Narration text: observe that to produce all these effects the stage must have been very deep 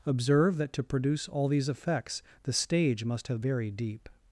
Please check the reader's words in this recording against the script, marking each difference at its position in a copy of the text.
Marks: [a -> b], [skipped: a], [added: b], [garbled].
observe that to produce all these effects the stage must have [skipped: been] very deep